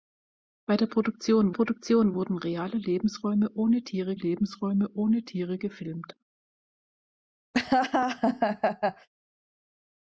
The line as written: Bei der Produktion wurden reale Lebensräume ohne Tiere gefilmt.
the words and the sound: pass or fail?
fail